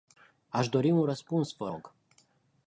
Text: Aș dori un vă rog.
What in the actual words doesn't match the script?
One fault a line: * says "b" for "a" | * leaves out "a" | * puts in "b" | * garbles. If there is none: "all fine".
* puts in "răspuns"